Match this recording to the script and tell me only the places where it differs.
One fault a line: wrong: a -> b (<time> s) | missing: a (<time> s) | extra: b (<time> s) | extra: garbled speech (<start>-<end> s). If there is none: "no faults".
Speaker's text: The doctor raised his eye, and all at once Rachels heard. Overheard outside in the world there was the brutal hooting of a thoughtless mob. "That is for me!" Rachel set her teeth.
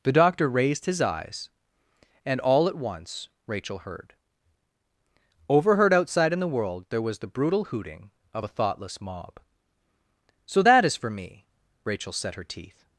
wrong: eye -> eyes (1.0 s)
wrong: Rachels -> Rachel (3.5 s)
extra: So (10.4 s)